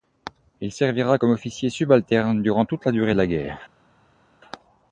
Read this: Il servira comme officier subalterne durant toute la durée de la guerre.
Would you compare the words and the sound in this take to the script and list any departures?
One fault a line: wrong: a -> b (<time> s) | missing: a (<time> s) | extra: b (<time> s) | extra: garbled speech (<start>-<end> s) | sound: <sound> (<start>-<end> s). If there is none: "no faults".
no faults